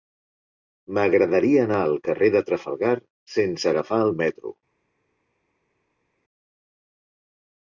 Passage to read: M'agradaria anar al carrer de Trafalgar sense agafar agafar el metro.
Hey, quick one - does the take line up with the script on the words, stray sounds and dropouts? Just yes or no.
no